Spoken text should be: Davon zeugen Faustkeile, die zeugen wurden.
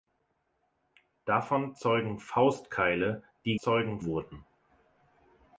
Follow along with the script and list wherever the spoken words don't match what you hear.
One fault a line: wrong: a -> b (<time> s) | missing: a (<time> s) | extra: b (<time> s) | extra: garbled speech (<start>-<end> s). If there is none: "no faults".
no faults